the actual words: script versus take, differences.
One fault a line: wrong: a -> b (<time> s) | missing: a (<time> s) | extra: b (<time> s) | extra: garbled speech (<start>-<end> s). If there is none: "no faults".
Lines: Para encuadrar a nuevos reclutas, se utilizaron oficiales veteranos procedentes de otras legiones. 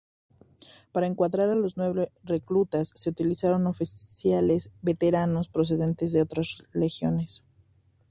extra: los (1.5 s)